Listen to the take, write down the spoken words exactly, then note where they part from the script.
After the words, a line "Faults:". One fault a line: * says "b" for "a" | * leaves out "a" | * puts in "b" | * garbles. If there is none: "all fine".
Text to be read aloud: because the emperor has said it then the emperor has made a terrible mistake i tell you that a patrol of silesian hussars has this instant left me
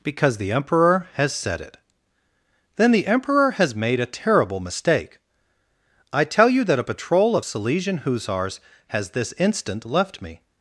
because the emperor has said it then the emperor has made a terrible mistake i tell you that a patrol of silesian hussars has this instant left me
Faults:
all fine